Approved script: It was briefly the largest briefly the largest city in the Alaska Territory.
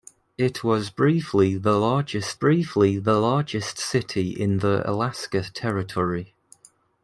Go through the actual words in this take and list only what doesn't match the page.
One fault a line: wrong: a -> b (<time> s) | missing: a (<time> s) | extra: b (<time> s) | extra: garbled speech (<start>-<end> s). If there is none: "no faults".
no faults